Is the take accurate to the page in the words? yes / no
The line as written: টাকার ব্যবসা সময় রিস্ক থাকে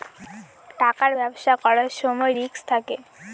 no